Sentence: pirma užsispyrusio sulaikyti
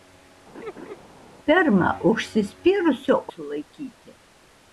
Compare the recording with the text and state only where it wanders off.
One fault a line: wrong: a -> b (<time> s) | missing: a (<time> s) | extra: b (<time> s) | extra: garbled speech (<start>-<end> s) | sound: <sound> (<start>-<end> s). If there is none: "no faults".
sound: laugh (0.5-1.0 s)